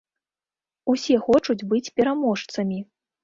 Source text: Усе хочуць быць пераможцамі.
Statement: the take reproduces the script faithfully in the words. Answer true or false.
true